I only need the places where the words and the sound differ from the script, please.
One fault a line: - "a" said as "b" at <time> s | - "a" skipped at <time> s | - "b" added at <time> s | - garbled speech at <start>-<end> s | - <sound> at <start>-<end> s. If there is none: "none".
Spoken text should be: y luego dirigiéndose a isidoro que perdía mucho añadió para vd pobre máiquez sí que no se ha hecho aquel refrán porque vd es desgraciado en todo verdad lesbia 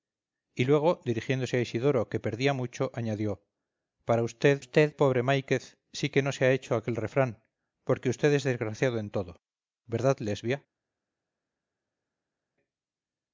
- "vd" added at 4.6 s